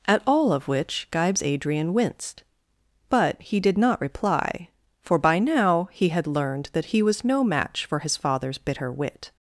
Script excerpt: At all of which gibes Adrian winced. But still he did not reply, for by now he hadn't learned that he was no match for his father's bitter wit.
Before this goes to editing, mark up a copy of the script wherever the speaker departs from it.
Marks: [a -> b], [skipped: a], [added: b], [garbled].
At all of which gibes Adrian winced. But [skipped: still] he did not reply, for by now he [hadn't -> had] learned that he was no match for his father's bitter wit.